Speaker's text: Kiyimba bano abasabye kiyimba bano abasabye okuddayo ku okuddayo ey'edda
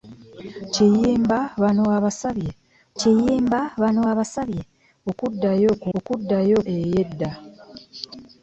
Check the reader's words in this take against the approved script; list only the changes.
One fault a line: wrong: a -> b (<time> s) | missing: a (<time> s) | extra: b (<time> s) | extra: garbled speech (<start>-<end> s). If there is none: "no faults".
no faults